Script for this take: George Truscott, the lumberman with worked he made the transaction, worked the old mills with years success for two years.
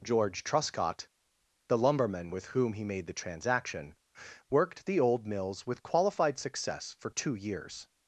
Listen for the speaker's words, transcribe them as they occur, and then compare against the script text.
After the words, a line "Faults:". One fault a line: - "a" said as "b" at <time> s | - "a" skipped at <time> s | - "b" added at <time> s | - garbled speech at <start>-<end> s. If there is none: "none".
George Truscott, the lumberman with whom he made the transaction, worked the old mills with qualified success for two years.
Faults:
- "worked" said as "whom" at 2.4 s
- "years" said as "qualified" at 5.8 s